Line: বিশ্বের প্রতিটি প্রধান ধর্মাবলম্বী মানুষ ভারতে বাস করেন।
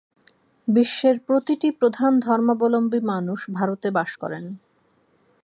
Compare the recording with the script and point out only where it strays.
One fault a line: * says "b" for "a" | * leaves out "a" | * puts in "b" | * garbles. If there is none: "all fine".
all fine